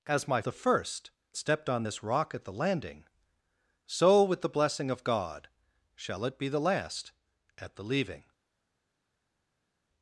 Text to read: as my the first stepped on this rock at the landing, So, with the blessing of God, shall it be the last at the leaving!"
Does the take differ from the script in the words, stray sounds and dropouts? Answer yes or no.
no